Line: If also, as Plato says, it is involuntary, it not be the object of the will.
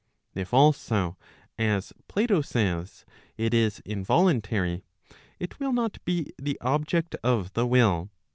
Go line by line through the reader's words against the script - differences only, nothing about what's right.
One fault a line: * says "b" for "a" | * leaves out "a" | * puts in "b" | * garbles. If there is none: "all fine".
* puts in "will"